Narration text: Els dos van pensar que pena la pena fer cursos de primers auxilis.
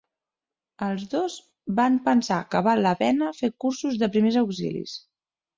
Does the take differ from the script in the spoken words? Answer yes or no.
yes